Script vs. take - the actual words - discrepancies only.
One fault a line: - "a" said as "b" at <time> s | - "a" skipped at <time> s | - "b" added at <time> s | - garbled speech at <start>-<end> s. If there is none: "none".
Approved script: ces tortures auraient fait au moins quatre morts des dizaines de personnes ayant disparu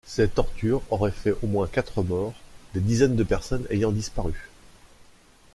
none